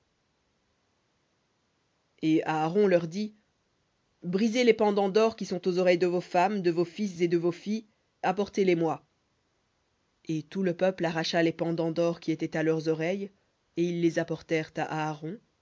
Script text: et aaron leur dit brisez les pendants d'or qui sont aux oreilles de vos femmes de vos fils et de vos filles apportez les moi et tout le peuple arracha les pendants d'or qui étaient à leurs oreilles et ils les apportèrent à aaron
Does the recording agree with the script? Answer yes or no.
yes